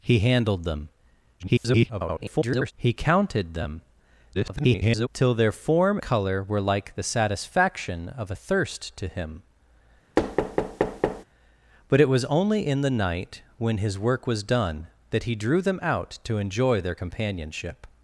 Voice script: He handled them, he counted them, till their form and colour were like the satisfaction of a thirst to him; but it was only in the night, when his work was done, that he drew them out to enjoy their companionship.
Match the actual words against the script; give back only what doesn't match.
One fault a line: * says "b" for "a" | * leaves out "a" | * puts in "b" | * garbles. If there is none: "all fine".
* garbles
* garbles
* leaves out "and"